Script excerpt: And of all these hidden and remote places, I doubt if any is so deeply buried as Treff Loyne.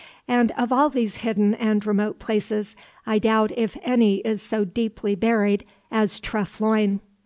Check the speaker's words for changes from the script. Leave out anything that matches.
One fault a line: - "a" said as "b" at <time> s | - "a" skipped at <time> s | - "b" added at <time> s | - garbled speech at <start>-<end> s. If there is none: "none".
none